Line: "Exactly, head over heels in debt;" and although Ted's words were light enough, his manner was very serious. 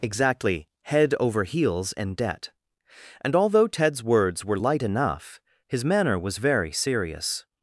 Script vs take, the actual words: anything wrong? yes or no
no